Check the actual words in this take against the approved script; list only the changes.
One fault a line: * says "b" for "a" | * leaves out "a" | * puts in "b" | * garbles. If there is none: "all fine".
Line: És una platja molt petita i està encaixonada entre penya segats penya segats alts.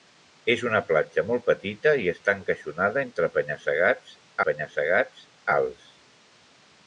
all fine